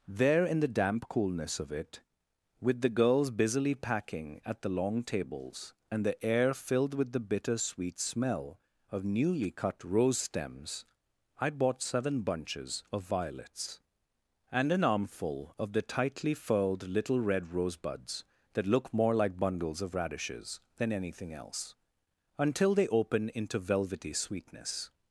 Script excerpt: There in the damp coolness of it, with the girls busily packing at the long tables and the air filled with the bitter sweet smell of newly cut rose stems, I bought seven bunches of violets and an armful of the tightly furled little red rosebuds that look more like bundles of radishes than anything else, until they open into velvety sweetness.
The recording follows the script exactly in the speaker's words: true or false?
true